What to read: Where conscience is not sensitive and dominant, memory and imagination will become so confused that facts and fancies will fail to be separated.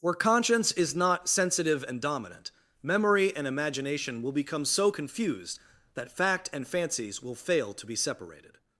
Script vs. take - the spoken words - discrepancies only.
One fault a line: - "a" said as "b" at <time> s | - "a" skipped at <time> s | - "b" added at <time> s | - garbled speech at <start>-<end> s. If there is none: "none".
- "facts" said as "fact" at 6.1 s